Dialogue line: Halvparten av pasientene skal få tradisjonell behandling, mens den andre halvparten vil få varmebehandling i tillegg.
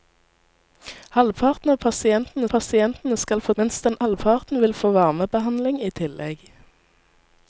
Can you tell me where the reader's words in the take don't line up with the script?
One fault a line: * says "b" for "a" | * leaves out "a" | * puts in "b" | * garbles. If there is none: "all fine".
* puts in "pasientene"
* leaves out "tradisjonell behandling"
* leaves out "andre"